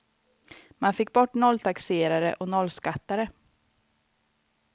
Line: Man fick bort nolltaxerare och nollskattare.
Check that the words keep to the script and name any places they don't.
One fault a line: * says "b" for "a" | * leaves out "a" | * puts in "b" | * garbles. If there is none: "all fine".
all fine